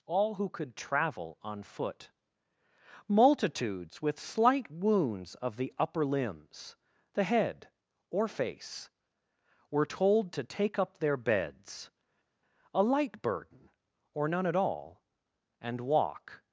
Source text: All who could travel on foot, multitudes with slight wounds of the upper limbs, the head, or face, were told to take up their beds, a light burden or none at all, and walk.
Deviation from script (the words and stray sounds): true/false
false